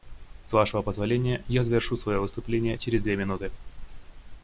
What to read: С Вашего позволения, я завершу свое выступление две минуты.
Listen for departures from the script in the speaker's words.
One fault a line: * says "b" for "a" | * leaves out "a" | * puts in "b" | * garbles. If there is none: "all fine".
* puts in "через"